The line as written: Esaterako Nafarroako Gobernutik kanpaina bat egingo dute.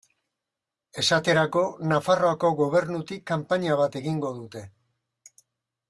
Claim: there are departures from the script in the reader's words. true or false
false